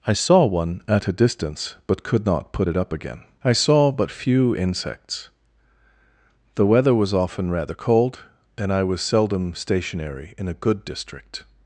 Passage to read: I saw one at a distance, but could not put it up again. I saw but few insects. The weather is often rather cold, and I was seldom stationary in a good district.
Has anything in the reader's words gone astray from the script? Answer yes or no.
yes